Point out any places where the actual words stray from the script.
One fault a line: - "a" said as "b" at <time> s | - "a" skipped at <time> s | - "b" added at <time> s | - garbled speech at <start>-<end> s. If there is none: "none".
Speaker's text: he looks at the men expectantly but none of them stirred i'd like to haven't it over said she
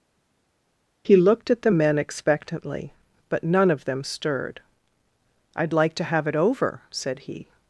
- "looks" said as "looked" at 1.2 s
- "haven't" said as "have" at 6.1 s
- "she" said as "he" at 7.3 s